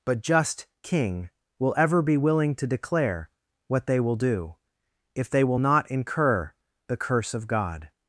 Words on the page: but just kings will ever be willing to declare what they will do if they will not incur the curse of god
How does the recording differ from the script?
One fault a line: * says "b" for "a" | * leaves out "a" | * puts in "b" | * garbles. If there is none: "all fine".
* says "king" for "kings"